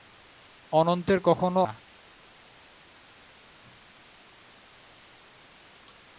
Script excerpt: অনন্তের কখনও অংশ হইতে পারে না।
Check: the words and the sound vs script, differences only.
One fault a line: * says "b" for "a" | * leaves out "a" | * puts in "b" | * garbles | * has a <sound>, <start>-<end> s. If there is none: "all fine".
* leaves out "অংশ হইতে পারে"